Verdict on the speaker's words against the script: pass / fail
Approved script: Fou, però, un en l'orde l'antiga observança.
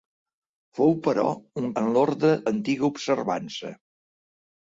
pass